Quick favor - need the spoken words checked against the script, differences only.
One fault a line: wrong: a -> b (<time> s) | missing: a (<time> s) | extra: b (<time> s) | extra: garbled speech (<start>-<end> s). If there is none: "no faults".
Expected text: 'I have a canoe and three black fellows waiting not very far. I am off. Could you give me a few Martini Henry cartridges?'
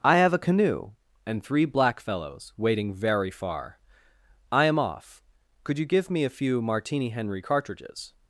missing: not (2.9 s)